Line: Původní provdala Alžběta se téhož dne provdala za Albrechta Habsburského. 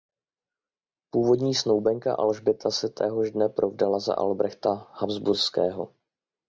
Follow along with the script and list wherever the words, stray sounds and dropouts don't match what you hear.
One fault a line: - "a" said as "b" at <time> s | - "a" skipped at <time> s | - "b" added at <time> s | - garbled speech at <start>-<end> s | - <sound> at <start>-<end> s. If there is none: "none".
- "provdala" said as "snoubenka" at 1.6 s